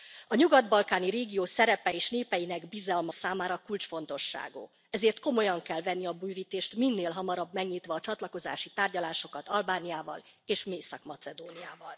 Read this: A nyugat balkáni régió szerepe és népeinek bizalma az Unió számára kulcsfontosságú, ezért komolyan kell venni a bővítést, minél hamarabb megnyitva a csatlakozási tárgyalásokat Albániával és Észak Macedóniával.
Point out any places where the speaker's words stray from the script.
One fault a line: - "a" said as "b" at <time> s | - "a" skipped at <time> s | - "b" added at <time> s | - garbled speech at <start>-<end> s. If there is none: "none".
- "az Unió" skipped at 3.1 s